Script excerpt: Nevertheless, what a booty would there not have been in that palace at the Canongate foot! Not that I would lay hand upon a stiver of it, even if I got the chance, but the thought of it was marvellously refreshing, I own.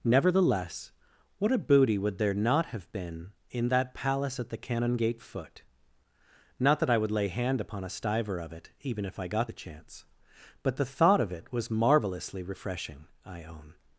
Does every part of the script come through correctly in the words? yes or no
yes